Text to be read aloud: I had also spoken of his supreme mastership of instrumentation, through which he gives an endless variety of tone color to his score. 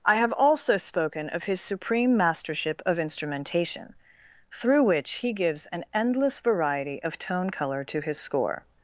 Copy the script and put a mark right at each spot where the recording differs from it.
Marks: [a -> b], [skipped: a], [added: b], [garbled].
I [had -> have] also spoken of his supreme mastership of instrumentation, through which he gives an endless variety of tone color to his score.